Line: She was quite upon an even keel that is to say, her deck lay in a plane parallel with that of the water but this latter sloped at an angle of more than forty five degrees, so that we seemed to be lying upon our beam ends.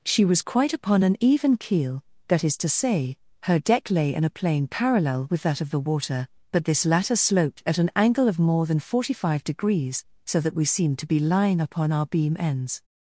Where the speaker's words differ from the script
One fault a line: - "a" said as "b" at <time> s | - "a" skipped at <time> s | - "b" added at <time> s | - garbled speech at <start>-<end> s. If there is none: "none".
none